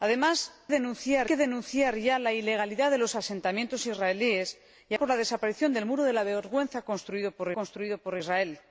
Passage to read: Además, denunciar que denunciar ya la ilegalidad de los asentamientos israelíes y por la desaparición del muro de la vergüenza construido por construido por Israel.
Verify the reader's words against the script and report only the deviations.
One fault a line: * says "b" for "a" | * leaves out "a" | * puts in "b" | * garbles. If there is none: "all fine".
all fine